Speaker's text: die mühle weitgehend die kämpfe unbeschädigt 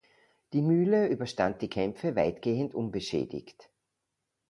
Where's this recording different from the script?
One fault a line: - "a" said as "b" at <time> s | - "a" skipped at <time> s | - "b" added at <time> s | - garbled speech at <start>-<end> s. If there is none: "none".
- "weitgehend" said as "überstand" at 1.1 s
- "weitgehend" added at 2.1 s